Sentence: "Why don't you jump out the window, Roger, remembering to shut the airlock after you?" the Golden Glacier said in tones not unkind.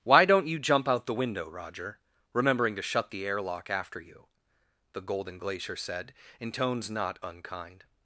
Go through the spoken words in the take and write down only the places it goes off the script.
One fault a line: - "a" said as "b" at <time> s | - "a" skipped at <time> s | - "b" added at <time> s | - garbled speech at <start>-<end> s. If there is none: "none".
none